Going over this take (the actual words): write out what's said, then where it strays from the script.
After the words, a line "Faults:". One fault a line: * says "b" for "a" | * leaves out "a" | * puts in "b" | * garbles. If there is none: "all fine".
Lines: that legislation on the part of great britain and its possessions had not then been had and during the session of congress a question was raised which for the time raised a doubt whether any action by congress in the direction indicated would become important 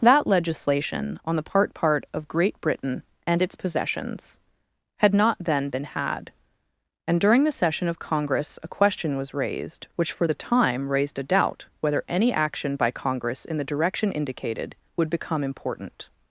that legislation on the part part of great britain and its possessions had not then been had and during the session of congress a question was raised which for the time raised a doubt whether any action by congress in the direction indicated would become important
Faults:
* puts in "part"